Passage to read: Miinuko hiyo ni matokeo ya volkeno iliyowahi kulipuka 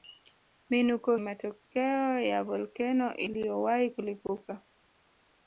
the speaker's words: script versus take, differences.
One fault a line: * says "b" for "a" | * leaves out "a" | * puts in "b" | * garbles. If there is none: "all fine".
* leaves out "hiyo ni"